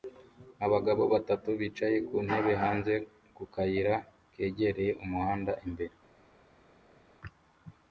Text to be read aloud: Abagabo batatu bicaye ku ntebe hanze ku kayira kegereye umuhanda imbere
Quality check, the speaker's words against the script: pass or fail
pass